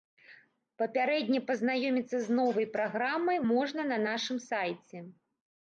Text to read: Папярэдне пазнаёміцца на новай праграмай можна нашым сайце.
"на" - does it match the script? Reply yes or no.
no